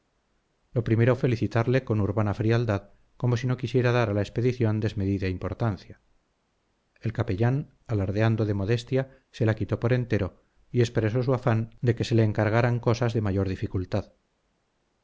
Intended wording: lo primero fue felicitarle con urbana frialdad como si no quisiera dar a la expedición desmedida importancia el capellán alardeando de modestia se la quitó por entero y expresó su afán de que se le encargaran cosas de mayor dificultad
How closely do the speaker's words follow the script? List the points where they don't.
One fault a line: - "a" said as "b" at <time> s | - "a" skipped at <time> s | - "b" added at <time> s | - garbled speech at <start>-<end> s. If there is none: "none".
- "fue" skipped at 1.1 s